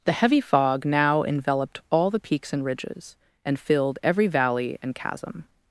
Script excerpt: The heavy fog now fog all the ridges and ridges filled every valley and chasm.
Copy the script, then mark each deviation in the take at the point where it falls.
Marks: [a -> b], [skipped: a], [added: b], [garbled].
The heavy fog now [fog -> enveloped] all the [ridges -> peaks] and ridges [added: and] filled every valley and chasm.